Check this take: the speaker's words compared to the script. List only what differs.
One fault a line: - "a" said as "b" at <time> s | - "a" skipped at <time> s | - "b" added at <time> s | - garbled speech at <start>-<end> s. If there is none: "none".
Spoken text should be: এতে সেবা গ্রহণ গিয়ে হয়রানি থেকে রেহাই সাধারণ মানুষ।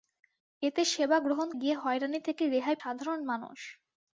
none